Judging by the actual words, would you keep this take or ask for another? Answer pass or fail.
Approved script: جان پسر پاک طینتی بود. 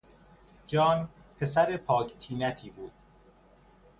pass